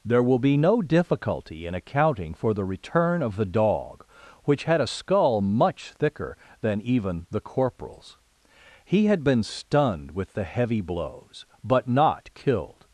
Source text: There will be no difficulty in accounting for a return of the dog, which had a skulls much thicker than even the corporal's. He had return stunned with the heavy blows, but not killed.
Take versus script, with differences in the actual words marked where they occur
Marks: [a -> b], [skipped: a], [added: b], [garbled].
There will be no difficulty in accounting for [a -> the] return of the dog, which had a [skulls -> skull] much thicker than even the corporal's. He had [return -> been] stunned with the heavy blows, but not killed.